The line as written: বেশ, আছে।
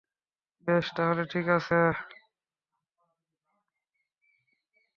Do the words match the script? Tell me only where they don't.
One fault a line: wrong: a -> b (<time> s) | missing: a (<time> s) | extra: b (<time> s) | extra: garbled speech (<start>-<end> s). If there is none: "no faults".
extra: তাহলে ঠিক (0.9 s)